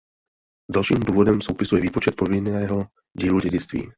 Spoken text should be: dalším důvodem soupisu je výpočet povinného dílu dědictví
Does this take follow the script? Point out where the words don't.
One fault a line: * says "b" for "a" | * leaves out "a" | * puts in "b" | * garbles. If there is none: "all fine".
all fine